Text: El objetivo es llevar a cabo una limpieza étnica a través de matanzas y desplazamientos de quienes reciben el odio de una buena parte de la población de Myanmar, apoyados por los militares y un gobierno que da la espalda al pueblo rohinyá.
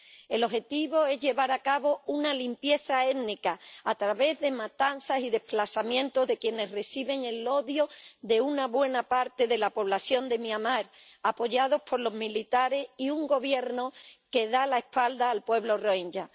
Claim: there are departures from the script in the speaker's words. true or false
false